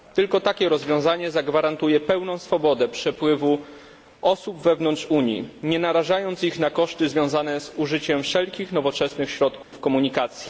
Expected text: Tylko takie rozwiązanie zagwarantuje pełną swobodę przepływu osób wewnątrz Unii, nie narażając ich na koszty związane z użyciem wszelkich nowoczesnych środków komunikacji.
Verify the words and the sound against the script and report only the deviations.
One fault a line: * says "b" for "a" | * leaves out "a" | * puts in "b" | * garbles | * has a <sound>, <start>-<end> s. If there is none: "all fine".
* has a dropout, 9.6-9.7 s